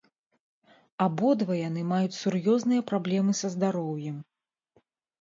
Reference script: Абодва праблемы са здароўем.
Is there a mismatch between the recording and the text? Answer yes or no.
yes